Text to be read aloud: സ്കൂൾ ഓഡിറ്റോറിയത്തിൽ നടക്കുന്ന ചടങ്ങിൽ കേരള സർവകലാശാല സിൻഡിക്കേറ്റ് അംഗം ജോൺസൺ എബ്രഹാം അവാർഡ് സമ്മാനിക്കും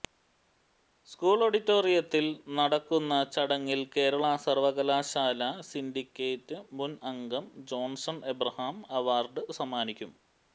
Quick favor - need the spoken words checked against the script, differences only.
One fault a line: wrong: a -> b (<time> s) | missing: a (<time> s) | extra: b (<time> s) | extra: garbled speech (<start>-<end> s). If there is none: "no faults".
extra: മുൻ (6.7 s)